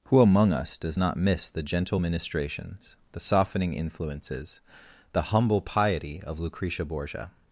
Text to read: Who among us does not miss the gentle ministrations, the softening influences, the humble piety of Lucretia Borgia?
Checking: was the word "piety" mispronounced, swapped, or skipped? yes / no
no